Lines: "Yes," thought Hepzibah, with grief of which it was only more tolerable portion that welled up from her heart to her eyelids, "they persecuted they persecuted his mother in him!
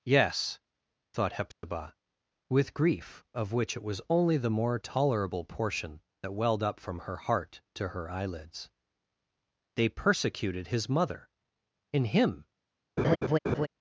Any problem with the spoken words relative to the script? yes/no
yes